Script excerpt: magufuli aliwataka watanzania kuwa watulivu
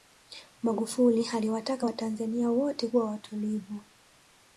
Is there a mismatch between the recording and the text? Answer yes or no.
yes